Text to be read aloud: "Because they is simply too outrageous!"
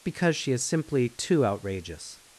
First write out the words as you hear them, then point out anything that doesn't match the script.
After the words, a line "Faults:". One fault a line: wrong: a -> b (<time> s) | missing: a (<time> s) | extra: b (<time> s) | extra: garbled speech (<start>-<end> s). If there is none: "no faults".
"Because she is simply too outrageous!"
Faults:
wrong: they -> she (0.3 s)